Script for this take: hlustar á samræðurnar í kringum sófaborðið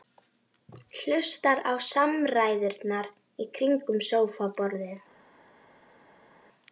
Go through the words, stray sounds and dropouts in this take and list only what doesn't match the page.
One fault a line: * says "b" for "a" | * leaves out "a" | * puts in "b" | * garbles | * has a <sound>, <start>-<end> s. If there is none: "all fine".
all fine